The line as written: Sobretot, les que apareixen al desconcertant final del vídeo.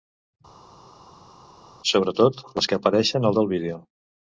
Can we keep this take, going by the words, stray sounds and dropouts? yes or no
no